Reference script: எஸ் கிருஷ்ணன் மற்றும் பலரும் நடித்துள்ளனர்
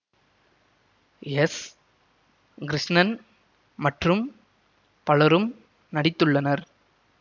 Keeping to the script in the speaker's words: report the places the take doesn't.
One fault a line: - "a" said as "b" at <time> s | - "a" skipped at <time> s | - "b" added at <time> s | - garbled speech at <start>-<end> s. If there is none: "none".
none